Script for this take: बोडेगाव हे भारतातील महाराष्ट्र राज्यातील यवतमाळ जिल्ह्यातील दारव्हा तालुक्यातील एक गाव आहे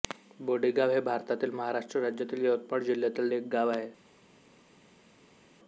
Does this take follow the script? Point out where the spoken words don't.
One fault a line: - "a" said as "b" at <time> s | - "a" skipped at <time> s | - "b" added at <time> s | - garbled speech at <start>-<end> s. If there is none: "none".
- "दारव्हा तालुक्यातील" skipped at 3.3 s